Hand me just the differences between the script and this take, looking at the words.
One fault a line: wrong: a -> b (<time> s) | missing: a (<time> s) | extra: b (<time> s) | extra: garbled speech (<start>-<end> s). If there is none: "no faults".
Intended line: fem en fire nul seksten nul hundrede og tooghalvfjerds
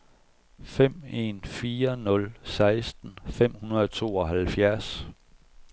wrong: nul -> fem (3.3 s)